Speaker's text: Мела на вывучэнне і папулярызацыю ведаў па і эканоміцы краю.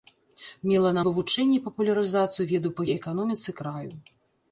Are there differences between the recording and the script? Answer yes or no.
no